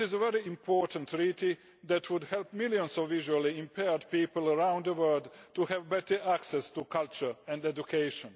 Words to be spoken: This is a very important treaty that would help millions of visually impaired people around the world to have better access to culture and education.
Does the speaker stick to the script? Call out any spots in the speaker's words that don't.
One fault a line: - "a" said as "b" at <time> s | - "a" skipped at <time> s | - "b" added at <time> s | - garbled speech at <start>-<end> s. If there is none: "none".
none